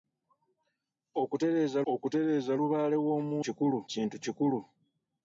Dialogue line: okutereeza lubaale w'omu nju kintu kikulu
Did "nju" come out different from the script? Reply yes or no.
yes